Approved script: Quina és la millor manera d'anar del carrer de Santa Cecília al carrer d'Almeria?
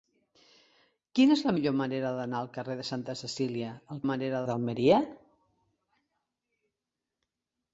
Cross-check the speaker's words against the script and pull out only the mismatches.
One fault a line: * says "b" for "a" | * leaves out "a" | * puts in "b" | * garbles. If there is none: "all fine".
* says "manera" for "carrer"